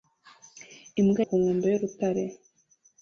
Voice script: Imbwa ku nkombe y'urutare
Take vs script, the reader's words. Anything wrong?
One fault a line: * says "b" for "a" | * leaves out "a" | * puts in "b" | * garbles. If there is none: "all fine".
all fine